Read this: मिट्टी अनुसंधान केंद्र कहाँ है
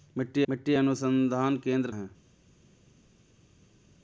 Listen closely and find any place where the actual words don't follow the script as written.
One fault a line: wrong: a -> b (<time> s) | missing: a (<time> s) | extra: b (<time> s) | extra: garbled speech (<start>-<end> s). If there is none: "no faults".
extra: मिट्टी (0.5 s)
missing: कहाँ (1.9 s)